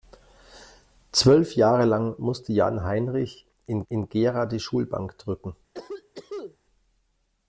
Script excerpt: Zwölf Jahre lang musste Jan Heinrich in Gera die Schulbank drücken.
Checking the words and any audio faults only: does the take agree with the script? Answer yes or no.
no